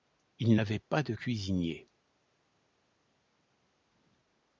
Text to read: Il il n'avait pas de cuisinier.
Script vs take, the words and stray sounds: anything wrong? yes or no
yes